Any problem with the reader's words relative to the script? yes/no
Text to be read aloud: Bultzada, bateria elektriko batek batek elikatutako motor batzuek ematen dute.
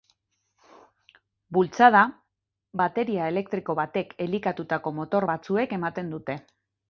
yes